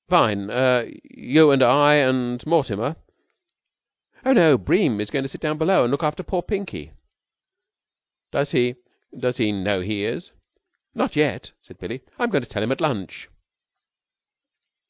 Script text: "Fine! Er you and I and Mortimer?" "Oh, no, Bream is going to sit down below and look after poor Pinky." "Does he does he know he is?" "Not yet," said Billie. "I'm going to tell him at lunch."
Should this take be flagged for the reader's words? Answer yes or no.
no